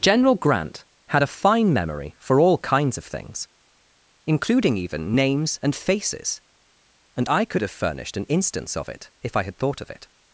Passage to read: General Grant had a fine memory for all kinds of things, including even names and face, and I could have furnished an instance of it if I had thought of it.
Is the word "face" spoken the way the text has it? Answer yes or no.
no